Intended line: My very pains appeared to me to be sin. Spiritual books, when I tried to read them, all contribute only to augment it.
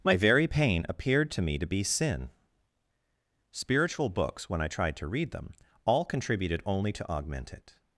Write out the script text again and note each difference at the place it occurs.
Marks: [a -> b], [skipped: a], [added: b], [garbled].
My very [pains -> pain] appeared to me to be sin. Spiritual books, when I tried to read them, all [contribute -> contributed] only to augment it.